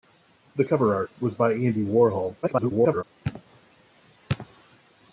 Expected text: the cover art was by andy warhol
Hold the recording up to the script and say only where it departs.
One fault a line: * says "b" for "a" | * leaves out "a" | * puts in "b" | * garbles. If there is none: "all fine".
* garbles